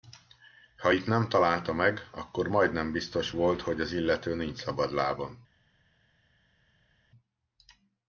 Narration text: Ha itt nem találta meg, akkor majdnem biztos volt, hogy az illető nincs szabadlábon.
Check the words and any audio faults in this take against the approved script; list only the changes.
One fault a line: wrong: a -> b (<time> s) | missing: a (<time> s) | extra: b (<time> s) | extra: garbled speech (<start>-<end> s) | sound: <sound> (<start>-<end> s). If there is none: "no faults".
no faults